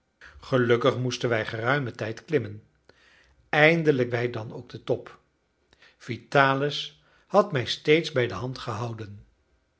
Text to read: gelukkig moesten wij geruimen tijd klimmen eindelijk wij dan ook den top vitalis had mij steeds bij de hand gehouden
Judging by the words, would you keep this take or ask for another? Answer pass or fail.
pass